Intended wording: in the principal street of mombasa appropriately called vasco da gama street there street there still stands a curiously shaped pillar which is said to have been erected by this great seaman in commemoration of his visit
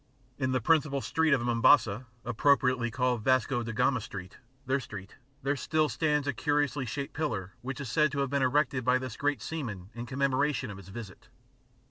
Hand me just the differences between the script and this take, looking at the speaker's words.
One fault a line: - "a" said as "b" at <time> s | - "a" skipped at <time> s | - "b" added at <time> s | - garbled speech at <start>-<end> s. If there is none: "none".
none